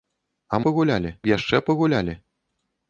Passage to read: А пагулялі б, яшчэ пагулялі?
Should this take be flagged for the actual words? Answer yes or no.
no